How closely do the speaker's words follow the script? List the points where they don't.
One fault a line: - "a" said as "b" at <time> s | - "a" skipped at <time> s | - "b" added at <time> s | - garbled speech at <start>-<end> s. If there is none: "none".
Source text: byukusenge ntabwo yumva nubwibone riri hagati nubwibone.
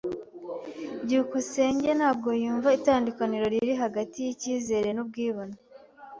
- "nubwibone" said as "itandukaniro" at 2.8 s
- "yicyizere" added at 4.2 s